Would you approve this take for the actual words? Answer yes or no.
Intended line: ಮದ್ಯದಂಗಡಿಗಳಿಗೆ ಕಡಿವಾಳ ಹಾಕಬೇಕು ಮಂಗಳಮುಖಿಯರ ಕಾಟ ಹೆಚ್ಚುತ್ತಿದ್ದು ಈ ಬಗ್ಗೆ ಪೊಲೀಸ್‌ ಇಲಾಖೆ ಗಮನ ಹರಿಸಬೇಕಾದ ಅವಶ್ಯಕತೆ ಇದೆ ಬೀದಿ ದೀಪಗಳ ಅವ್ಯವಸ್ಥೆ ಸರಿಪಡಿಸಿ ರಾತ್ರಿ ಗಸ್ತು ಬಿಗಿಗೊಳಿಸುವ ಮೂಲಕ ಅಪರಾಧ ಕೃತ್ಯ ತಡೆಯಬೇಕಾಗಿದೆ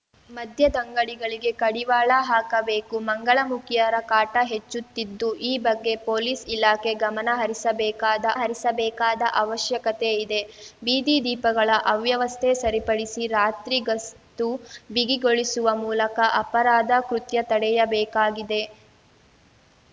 no